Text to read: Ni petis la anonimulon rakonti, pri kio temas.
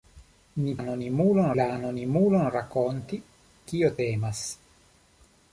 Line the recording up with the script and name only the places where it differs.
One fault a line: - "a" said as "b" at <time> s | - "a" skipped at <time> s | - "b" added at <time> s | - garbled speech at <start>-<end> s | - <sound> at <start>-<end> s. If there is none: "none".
- "petis" said as "anonimulon" at 0.8 s
- "pri" skipped at 3.2 s